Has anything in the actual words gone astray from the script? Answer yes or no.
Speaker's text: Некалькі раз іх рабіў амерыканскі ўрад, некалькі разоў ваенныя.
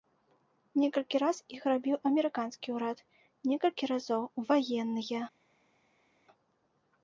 no